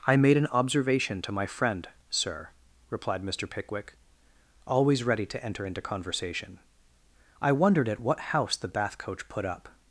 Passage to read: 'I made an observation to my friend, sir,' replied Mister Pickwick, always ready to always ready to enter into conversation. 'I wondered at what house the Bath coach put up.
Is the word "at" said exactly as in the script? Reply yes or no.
yes